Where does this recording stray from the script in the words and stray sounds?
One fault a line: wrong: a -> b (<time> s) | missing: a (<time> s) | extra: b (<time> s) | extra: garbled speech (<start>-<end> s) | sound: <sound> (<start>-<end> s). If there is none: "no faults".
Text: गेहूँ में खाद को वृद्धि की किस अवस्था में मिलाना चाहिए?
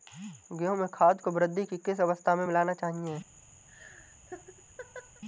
sound: laugh (3.7-5.2 s)